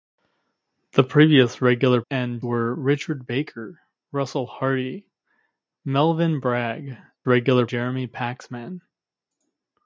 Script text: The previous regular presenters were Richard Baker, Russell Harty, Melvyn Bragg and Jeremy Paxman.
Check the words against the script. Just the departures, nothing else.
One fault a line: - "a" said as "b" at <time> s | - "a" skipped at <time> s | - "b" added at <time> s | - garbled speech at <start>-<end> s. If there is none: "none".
- "presenters" said as "and" at 2.1 s
- "and" said as "regular" at 7.3 s